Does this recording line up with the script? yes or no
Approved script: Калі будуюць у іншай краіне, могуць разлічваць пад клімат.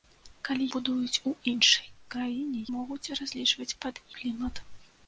yes